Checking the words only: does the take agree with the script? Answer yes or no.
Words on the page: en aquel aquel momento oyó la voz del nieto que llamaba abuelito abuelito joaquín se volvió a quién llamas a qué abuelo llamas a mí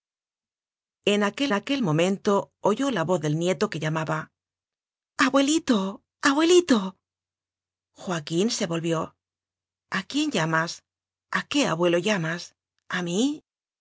yes